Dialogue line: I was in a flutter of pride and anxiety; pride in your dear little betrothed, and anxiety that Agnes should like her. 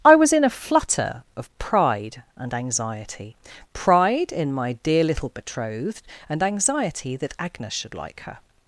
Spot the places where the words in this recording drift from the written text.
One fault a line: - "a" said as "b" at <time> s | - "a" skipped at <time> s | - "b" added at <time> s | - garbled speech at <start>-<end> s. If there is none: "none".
- "your" said as "my" at 4.5 s